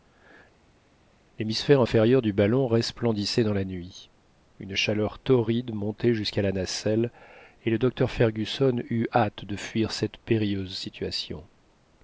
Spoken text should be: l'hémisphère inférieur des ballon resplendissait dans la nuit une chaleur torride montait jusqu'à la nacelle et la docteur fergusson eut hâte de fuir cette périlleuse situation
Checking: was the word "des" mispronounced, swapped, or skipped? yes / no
yes